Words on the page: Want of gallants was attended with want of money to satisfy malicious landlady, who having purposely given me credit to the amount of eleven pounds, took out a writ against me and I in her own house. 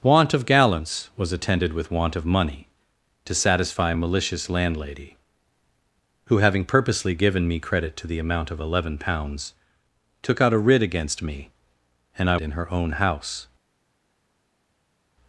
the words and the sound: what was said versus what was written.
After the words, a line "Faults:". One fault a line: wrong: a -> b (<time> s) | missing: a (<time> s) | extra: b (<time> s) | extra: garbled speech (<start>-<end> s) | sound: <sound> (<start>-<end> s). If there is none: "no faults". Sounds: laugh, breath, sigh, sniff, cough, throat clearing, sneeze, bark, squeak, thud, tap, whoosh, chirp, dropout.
Want of gallants was attended with want of money to satisfy malicious landlady, who having purposely given me credit to the amount of eleven pounds, took out a writ against me and I in her own house.
Faults:
no faults